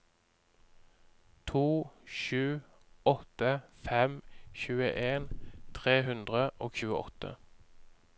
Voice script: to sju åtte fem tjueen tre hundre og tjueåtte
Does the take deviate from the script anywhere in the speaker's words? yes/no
no